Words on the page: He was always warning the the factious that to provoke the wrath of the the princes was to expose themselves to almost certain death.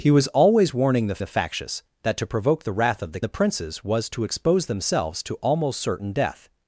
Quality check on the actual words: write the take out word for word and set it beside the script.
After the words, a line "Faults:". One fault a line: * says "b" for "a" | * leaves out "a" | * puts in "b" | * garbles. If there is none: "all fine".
He was always warning the the factious that to provoke the wrath of the the princes was to expose themselves to almost certain death.
Faults:
all fine